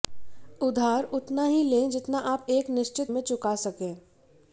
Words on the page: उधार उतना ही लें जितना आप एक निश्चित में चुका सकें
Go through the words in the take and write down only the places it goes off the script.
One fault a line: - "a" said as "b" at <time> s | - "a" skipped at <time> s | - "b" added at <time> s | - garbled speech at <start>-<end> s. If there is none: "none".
none